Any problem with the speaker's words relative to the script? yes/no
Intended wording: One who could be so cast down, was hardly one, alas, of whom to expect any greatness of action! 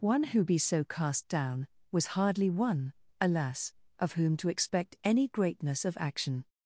yes